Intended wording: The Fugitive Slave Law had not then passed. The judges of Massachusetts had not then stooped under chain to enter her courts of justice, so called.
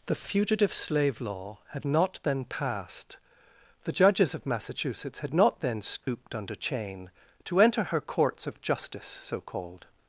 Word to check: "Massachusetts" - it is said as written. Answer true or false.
true